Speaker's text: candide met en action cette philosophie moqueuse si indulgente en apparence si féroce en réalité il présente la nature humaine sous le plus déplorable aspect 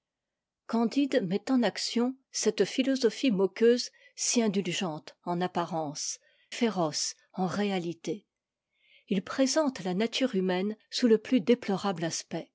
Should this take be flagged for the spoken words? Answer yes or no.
yes